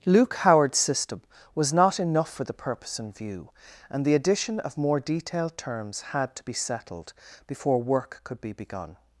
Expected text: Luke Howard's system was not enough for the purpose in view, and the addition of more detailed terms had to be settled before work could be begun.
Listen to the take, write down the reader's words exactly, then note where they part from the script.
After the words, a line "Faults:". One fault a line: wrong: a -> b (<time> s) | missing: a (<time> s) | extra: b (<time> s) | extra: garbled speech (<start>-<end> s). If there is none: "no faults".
Luke Howard's system was not enough for the purpose in view, and the addition of more detailed terms had to be settled before work could be begun.
Faults:
no faults